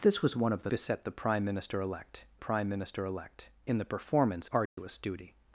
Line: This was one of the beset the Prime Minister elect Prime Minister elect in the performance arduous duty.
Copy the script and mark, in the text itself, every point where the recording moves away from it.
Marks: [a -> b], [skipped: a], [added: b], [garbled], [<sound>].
This was one of the beset the Prime Minister elect Prime Minister elect in the performance arduous [dropout] duty.